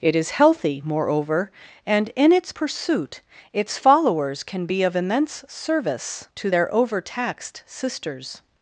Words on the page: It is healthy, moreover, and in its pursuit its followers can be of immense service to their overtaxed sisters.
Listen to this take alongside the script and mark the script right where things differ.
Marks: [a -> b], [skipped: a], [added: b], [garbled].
It is healthy, moreover, and in its pursuit its followers can be of immense service to their overtaxed sisters.